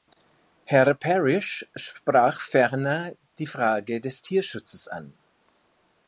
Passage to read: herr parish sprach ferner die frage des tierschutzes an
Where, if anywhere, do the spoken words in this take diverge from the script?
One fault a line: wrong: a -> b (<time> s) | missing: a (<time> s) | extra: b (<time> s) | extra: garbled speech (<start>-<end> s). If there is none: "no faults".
no faults